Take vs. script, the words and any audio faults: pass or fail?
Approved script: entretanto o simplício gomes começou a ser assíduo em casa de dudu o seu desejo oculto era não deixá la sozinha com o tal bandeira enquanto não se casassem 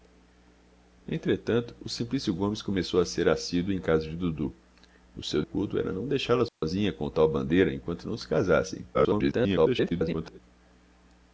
fail